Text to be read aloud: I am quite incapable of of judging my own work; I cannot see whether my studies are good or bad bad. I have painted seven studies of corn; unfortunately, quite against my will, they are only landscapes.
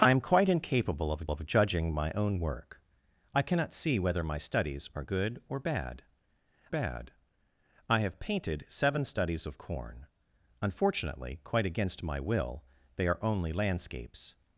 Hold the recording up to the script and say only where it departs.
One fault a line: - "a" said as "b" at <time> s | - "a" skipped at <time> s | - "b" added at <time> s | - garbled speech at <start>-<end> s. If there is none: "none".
none